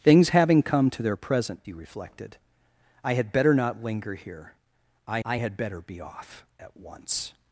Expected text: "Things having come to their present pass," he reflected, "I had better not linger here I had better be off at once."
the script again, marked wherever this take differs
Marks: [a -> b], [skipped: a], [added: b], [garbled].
"Things having come to their present [skipped: pass,"] he reflected, "I had better not linger here I [added: I] had better be off at once."